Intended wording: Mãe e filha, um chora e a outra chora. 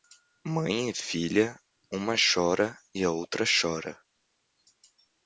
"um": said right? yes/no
no